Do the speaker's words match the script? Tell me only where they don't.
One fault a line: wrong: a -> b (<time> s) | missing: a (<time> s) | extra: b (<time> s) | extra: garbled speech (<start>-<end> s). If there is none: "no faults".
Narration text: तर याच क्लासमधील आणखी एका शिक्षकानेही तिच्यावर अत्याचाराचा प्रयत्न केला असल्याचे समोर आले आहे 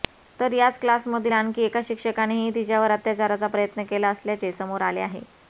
no faults